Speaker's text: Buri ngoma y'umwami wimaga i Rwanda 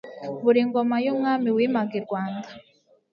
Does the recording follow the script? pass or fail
pass